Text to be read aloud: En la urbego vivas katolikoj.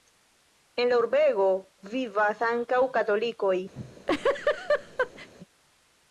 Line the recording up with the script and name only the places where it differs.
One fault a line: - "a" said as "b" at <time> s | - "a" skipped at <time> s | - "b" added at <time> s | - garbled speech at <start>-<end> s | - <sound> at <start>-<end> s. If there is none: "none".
- "ankaŭ" added at 2.5 s
- laugh at 3.8-5.3 s